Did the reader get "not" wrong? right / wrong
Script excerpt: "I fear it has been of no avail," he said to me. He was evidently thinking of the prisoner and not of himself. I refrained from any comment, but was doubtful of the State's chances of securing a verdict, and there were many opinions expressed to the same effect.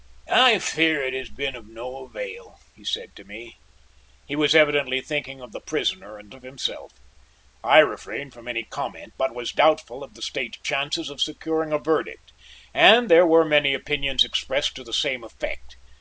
wrong